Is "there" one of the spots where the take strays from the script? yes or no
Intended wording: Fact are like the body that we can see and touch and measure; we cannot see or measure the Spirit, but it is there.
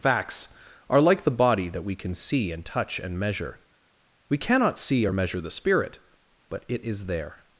no